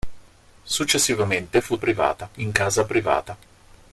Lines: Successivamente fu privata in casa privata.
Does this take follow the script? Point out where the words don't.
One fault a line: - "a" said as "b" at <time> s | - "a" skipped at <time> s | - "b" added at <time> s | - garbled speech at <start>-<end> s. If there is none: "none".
none